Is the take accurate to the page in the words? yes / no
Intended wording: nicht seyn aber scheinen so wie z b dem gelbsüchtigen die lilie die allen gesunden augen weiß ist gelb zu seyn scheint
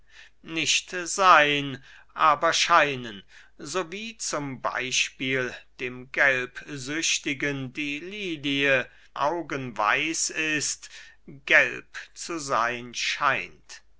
no